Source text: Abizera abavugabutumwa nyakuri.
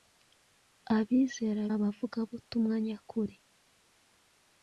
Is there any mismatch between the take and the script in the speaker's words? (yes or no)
no